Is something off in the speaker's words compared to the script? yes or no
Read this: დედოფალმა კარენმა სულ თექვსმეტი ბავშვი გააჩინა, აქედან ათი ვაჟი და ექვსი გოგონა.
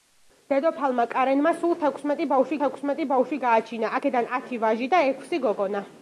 yes